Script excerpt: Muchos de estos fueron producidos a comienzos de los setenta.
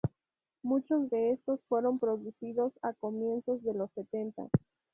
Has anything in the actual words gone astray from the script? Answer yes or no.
no